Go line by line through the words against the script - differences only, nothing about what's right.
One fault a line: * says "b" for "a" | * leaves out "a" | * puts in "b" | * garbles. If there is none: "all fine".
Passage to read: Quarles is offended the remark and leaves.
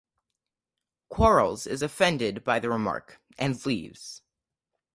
* puts in "by"